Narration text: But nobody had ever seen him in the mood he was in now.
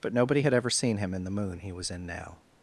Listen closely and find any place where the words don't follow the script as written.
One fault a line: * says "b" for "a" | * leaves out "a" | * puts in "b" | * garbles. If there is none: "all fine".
* says "moon" for "mood"